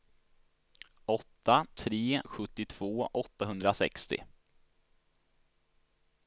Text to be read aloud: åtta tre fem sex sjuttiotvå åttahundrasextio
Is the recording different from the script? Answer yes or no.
yes